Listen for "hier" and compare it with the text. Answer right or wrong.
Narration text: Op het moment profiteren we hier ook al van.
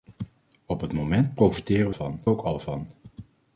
wrong